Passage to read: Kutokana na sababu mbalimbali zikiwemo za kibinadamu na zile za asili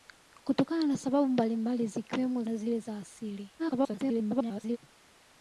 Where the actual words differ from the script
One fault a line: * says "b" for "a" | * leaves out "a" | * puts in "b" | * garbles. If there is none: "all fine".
* leaves out "za kibinadamu"
* garbles